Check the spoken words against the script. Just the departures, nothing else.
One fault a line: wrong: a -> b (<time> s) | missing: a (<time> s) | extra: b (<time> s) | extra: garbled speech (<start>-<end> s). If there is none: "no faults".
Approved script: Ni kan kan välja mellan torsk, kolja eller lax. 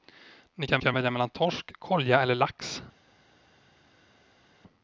no faults